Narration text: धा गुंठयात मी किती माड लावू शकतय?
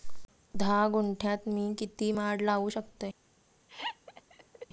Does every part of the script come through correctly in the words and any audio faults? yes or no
no